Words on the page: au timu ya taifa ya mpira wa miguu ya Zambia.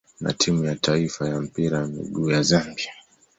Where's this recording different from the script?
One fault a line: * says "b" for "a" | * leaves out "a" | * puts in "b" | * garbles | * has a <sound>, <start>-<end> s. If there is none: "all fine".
* says "na" for "au"